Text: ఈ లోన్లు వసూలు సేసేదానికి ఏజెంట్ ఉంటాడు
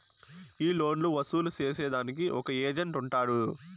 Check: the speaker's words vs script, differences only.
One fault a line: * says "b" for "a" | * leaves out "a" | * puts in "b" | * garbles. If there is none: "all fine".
* puts in "ఒక"